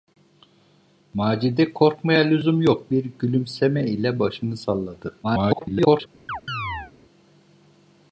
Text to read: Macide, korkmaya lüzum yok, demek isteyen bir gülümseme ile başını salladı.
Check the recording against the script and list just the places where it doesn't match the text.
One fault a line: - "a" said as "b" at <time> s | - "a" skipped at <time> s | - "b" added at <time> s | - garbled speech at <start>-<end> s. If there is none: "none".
- "demek isteyen" skipped at 2.9 s
- garbled speech at 5.2-6.1 s